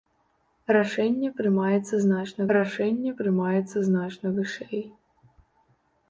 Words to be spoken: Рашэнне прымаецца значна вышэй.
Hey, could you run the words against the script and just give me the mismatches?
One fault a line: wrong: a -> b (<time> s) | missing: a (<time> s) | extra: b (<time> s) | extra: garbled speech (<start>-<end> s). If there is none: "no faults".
extra: рашэнне прымаецца значна (2.6 s)